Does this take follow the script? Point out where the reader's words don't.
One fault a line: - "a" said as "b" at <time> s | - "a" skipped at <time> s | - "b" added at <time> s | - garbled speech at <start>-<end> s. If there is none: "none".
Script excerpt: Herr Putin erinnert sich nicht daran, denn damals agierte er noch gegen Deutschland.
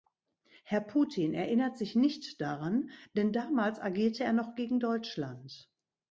none